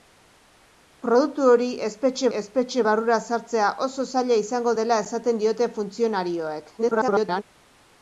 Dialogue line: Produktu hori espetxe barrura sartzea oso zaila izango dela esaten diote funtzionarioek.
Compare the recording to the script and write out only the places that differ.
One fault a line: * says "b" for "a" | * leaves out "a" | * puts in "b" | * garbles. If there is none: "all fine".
* puts in "espetxe"
* garbles